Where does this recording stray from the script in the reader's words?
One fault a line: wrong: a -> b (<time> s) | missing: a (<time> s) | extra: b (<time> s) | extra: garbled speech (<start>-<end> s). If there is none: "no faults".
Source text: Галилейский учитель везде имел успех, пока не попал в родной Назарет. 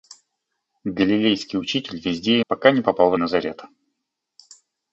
missing: имел успех (2.4 s)
missing: родной (3.1 s)